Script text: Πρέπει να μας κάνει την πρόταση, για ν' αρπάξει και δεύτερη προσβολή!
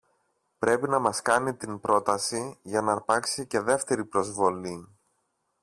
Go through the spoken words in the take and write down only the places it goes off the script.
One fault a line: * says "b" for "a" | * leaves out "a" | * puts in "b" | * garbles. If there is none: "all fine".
all fine